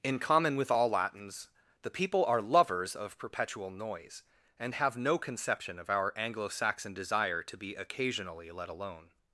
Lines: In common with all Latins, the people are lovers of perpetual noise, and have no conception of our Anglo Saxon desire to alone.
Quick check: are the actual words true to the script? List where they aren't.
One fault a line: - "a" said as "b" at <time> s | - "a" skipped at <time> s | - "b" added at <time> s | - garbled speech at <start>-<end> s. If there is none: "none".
- "be occasionally let" added at 7.6 s